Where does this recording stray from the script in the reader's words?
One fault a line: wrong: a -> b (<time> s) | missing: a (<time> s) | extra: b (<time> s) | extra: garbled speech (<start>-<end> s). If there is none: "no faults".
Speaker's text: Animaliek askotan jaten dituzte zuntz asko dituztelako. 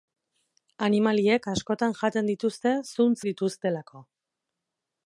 missing: asko (3.2 s)